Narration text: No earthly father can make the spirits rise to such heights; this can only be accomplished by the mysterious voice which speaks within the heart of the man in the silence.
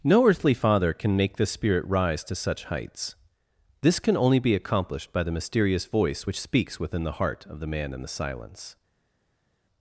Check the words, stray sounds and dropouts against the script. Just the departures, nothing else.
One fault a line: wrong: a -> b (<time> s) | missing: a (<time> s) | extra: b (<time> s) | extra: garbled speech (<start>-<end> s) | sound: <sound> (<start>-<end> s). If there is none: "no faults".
wrong: spirits -> spirit (1.4 s)